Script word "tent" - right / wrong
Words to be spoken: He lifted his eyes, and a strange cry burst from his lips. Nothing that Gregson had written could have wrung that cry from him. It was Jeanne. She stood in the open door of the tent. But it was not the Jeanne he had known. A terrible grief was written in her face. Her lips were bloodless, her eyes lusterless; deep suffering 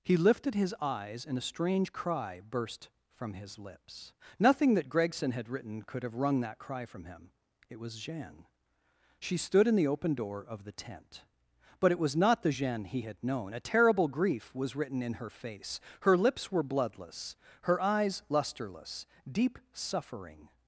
right